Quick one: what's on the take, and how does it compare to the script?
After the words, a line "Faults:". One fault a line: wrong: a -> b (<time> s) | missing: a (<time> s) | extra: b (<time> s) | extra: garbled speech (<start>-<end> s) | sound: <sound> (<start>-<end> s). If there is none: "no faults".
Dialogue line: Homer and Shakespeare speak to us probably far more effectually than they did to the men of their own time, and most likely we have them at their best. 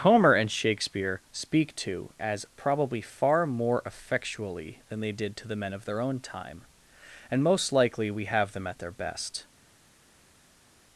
Homer and Shakespeare speak to as probably far more effectually than they did to the men of their own time, and most likely we have them at their best.
Faults:
wrong: us -> as (2.2 s)